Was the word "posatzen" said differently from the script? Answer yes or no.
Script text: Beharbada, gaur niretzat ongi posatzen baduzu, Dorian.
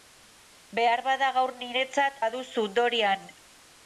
yes